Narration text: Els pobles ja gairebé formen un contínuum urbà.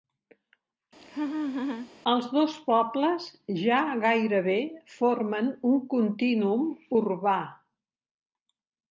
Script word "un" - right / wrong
right